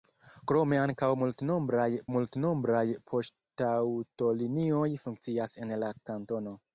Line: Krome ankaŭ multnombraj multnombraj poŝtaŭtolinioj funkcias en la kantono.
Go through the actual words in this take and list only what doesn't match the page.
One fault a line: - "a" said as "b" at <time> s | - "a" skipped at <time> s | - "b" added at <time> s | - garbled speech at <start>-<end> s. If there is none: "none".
none